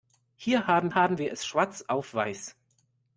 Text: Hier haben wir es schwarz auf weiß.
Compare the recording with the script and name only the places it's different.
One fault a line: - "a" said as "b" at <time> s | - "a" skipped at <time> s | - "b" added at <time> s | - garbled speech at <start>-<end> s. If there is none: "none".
- "haben" added at 0.9 s